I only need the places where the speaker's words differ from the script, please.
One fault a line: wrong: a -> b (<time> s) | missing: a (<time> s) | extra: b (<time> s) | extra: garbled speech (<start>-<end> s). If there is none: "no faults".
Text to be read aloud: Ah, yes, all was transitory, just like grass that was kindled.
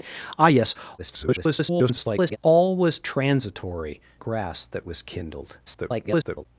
extra: garbled speech (1.0-2.4 s)
missing: just like (4.0 s)
extra: garbled speech (5.7-6.5 s)